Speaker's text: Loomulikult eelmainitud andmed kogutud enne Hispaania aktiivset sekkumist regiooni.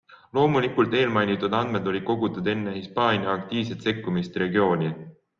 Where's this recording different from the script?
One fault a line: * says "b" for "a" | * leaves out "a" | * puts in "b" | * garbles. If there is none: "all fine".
* puts in "olid"